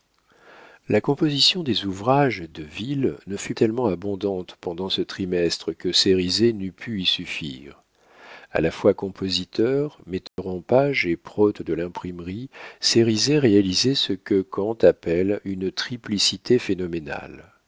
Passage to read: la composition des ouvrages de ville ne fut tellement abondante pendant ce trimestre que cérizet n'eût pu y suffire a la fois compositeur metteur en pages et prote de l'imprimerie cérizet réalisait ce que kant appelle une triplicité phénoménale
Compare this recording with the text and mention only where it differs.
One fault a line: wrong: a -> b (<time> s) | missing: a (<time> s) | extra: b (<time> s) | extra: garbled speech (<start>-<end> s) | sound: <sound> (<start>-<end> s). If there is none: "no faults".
sound: dropout (10.3-10.4 s)